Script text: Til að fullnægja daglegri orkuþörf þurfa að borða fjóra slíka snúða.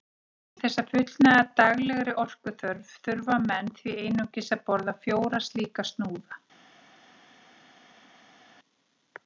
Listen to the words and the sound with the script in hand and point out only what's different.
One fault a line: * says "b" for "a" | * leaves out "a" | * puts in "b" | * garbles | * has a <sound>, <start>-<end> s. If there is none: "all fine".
* puts in "þess"
* puts in "menn því einungis"